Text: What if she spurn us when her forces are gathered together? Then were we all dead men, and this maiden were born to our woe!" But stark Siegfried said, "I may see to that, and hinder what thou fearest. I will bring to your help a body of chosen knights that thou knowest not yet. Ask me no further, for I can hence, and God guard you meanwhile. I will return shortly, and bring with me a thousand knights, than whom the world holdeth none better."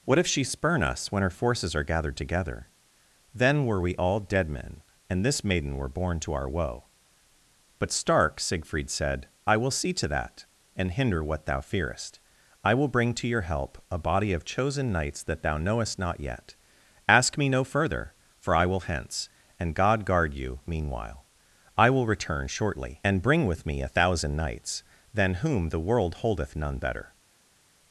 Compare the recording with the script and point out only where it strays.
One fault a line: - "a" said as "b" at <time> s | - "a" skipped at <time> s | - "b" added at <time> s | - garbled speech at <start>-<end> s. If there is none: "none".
- "may" said as "will" at 9.6 s
- "can" said as "will" at 18.6 s